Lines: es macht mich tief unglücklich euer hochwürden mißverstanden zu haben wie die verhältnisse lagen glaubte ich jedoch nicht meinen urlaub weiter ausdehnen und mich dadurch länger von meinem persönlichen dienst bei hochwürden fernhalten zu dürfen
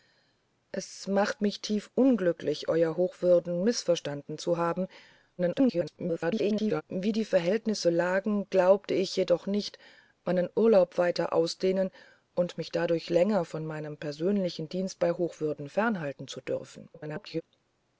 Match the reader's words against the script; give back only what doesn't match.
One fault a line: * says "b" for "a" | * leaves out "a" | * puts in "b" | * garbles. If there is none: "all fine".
* garbles
* garbles